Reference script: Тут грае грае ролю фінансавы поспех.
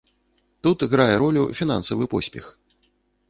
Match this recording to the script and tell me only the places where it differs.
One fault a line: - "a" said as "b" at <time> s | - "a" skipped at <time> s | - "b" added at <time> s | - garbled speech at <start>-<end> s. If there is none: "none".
- "грае" skipped at 1.1 s